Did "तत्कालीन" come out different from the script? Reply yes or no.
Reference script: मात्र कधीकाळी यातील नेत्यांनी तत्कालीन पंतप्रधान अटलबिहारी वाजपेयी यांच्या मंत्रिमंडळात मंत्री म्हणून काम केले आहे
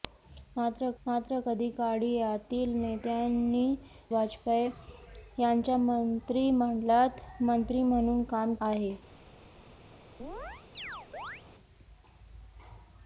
yes